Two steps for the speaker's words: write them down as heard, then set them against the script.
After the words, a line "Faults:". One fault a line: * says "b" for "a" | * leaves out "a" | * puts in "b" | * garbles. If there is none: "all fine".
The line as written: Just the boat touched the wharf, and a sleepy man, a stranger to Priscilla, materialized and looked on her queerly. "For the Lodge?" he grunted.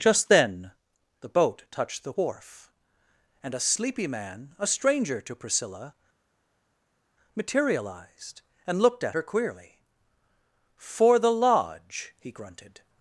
Just then the boat touched the wharf, and a sleepy man, a stranger to Priscilla, materialized and looked at her queerly. "For the Lodge?" he grunted.
Faults:
* puts in "then"
* says "at" for "on"